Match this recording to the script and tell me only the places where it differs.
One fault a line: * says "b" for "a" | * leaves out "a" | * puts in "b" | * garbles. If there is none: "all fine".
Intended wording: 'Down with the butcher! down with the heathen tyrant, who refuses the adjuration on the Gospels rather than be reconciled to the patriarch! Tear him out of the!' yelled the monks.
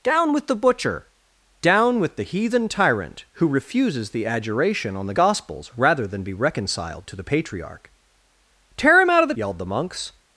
all fine